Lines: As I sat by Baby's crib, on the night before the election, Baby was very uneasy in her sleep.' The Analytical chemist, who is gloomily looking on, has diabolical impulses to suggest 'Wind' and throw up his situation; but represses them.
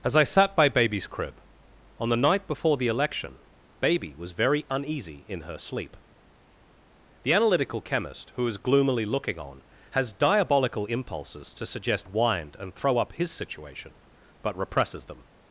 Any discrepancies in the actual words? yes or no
no